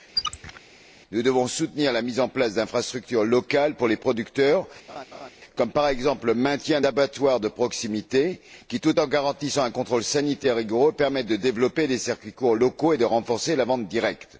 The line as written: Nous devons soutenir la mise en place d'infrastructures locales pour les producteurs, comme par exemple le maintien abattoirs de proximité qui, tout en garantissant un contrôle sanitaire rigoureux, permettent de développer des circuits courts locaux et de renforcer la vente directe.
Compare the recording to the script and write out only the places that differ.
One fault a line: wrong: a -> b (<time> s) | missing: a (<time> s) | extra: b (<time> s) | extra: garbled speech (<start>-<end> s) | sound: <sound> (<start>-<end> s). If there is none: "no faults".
sound: squeak (0.2-0.6 s)
sound: laugh (4.9-5.3 s)